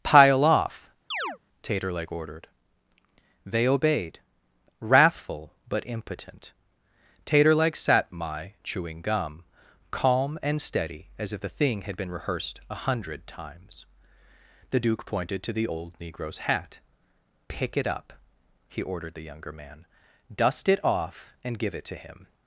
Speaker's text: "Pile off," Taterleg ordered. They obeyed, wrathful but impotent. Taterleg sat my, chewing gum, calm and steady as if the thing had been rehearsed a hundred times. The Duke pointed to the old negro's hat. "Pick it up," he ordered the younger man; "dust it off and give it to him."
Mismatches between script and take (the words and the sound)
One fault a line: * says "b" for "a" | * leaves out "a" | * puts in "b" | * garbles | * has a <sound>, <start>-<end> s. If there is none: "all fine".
* has a chirp, 1.1-1.4 s